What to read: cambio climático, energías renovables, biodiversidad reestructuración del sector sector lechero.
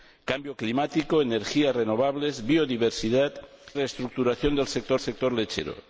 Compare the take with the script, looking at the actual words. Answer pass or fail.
pass